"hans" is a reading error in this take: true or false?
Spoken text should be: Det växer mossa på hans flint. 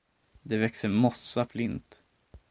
true